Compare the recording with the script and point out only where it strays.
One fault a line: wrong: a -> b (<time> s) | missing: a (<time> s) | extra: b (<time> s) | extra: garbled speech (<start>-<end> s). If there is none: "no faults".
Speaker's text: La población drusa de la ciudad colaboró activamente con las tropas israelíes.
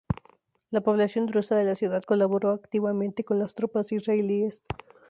no faults